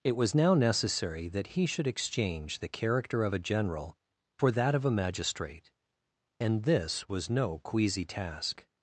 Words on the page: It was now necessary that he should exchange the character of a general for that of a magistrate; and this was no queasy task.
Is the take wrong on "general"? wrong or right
right